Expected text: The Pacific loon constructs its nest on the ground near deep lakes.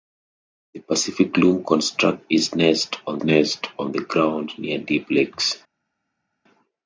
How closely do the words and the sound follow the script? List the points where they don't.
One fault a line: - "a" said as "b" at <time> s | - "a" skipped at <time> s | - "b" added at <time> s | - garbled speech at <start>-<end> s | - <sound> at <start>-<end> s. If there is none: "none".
- "nest on" added at 3.2 s